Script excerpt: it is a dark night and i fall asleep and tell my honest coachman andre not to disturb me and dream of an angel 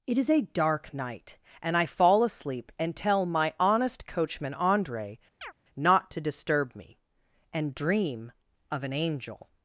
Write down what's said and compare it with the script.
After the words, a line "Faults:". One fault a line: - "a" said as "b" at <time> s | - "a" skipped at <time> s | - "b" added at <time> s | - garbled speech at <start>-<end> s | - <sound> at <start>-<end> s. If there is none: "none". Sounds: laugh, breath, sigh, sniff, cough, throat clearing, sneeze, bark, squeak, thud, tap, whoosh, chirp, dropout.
it is a dark night and i fall asleep and tell my honest coachman andre not to disturb me and dream of an angel
Faults:
- chirp at 5.4-5.5 s